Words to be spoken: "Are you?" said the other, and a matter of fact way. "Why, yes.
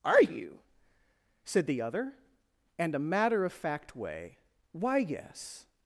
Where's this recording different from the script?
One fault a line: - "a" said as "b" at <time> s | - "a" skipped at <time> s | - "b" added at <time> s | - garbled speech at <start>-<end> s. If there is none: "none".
none